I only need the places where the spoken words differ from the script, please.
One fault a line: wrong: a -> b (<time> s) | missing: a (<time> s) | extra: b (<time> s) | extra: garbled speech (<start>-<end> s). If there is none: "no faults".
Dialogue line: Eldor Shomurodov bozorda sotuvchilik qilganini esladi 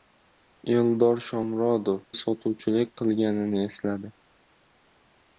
missing: bozorda (2.0 s)